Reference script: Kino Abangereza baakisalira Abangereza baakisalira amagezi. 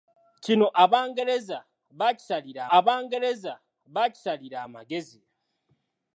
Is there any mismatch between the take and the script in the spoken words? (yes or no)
no